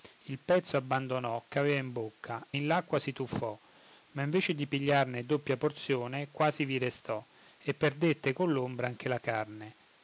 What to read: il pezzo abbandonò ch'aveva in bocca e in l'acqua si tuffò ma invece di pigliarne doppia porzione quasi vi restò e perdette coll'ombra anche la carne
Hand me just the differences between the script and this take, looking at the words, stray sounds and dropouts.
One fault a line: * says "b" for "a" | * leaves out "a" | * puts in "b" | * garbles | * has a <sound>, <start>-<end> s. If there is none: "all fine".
* leaves out "e"